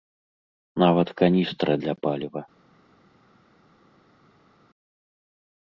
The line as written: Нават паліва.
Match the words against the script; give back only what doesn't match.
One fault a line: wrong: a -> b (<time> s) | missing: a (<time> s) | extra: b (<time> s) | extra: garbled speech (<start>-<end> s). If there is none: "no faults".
extra: каністра для (1.2 s)